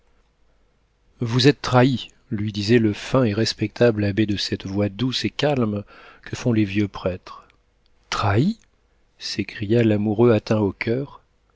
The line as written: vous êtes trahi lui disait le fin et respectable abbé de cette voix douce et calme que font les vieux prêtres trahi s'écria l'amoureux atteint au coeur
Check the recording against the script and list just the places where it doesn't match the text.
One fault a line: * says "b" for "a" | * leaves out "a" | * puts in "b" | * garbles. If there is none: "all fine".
all fine